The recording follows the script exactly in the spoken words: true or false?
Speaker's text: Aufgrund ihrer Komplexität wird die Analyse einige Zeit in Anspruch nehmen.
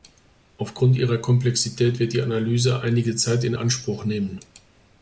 true